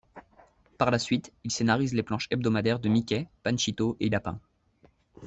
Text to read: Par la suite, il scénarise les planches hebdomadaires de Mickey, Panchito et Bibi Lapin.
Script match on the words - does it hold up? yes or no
no